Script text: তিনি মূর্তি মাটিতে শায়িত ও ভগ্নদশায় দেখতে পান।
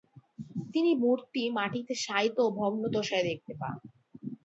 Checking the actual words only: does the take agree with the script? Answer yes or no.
yes